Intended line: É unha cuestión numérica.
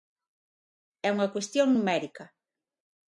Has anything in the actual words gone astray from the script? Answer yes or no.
no